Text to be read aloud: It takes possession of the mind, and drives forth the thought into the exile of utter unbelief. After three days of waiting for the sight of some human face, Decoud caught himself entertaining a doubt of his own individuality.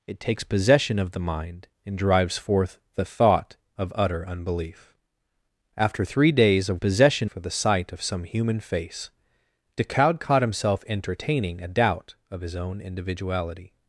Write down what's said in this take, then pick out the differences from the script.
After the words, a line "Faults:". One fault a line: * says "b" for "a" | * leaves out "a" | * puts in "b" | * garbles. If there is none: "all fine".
It takes possession of the mind, and drives forth the thought of utter unbelief. After three days of possession for the sight of some human face, Decoud caught himself entertaining a doubt of his own individuality.
Faults:
* leaves out "into the exile"
* says "possession" for "waiting"